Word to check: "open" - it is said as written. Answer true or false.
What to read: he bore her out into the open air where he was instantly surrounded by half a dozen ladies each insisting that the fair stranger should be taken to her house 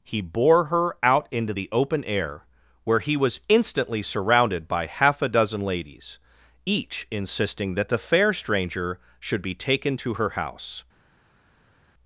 true